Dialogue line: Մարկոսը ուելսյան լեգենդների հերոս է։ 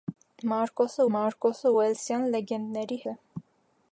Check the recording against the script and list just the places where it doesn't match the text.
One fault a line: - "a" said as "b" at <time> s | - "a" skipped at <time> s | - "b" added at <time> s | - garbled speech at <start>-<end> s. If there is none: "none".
- "մարկոսը" added at 1.2 s
- "հերոս" skipped at 3.0 s